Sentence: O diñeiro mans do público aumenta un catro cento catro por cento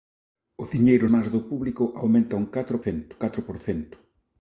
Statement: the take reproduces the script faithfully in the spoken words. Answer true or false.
true